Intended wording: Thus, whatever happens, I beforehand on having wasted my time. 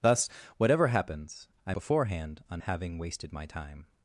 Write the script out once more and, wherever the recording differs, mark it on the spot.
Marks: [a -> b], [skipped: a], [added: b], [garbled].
Thus, whatever happens, I beforehand on having wasted my time.